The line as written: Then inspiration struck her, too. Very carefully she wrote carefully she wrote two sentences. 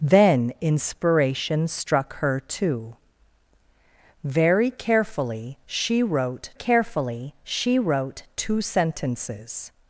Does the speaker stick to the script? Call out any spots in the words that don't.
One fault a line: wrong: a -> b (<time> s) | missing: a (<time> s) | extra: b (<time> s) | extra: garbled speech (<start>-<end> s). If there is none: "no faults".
no faults